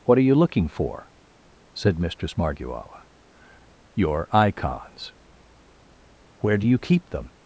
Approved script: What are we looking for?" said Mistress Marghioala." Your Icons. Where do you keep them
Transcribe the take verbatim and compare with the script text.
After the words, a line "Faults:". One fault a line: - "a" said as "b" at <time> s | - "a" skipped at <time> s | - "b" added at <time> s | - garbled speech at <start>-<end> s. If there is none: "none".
What are you looking for?" said Mistress Marghioala." Your Icons. Where do you keep them
Faults:
- "we" said as "you" at 0.2 s